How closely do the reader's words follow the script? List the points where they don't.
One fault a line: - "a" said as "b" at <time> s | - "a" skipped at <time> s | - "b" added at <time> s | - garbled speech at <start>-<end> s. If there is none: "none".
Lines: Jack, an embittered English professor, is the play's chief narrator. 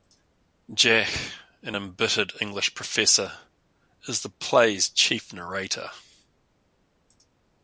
none